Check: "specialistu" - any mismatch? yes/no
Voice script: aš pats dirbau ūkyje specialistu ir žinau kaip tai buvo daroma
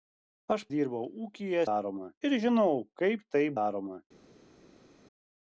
yes